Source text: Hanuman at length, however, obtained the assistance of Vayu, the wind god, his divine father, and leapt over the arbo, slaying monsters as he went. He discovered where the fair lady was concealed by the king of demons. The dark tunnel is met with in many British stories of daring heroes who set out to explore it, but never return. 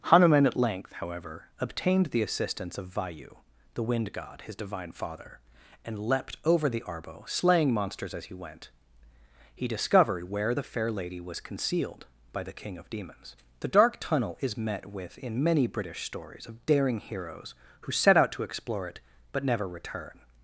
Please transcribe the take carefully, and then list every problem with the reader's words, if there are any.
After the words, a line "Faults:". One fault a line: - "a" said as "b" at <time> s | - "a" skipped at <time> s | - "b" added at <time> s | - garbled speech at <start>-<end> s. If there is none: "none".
Hanuman at length, however, obtained the assistance of Vayu, the wind god, his divine father, and leapt over the arbo, slaying monsters as he went. He discovered where the fair lady was concealed by the king of demons. The dark tunnel is met with in many British stories of daring heroes who set out to explore it, but never return.
Faults:
none